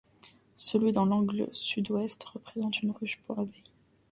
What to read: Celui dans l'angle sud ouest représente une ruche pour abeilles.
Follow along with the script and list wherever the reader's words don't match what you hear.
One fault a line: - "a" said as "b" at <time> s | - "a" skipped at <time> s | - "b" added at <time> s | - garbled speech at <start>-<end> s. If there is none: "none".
none